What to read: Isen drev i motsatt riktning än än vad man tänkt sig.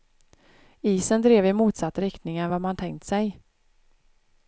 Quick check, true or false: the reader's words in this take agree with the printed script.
false